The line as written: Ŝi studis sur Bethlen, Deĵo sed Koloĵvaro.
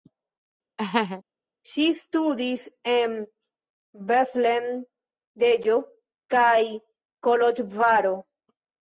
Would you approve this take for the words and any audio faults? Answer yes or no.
no